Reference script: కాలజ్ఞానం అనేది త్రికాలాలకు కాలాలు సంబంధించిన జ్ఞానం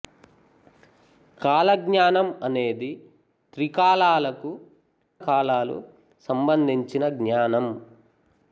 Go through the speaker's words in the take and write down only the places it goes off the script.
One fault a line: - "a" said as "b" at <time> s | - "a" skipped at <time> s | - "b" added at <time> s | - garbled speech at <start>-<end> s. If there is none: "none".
none